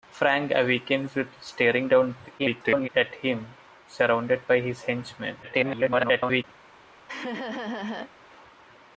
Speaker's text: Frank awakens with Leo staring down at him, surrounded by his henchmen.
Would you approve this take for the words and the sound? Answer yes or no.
no